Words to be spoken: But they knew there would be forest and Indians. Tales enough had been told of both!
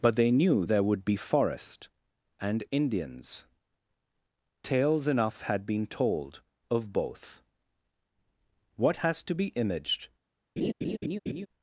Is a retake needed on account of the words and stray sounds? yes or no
yes